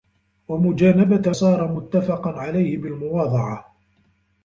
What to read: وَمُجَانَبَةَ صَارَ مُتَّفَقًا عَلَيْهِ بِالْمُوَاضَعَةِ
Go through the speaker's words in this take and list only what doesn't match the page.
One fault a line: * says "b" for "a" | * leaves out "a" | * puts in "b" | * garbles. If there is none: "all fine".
all fine